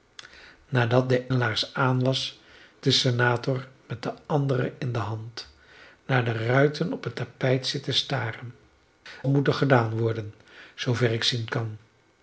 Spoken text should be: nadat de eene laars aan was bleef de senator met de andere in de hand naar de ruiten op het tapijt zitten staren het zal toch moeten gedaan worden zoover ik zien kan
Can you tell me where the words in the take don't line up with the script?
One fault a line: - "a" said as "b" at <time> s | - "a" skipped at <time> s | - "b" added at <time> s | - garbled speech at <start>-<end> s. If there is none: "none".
- "eene" skipped at 1.3 s
- "bleef" skipped at 2.4 s
- "het zal toch" skipped at 8.5 s